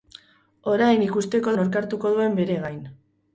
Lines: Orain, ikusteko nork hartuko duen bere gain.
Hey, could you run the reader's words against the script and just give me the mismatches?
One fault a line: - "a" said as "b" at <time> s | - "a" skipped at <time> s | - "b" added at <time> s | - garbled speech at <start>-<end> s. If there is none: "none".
none